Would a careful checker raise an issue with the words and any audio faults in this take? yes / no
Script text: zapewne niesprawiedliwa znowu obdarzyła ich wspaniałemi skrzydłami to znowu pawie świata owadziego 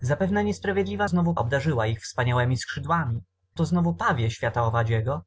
no